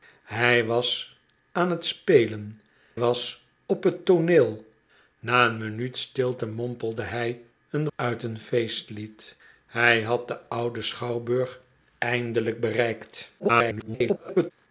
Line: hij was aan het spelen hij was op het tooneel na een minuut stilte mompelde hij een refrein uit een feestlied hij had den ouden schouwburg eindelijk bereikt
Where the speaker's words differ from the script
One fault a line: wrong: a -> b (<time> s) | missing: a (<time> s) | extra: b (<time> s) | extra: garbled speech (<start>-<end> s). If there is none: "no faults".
missing: hij (2.6 s)
missing: refrein (7.9 s)
extra: garbled speech (13.4-14.5 s)